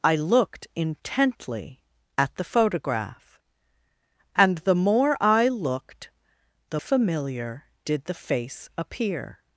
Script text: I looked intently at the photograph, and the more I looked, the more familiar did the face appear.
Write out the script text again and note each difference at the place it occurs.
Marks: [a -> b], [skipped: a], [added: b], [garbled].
I looked intently at the photograph, and the more I looked, the [skipped: more] familiar did the face appear.